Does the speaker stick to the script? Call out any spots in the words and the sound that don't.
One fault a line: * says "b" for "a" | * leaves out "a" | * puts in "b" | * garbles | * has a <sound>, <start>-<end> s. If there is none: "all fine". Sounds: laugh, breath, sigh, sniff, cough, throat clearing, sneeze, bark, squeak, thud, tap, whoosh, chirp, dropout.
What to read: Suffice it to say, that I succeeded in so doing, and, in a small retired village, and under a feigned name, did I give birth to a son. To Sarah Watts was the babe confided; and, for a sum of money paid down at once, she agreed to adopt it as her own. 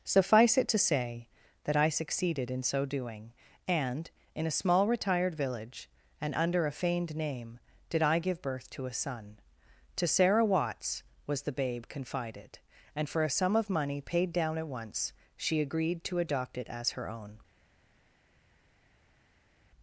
all fine